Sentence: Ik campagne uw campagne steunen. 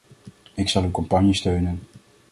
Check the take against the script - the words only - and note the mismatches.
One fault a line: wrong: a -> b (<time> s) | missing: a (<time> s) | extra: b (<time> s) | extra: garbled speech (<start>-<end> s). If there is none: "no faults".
wrong: campagne -> zal (0.7 s)